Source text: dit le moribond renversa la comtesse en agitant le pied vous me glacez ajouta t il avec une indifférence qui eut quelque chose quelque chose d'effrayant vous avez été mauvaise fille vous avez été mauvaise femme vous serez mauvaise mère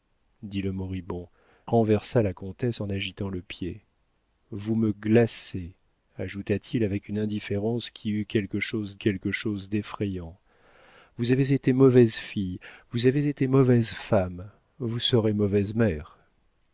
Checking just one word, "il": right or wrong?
right